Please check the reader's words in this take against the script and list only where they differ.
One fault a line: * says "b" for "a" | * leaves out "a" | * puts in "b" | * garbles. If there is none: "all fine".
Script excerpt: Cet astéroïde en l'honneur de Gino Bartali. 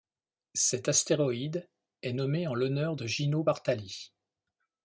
* puts in "est nommé"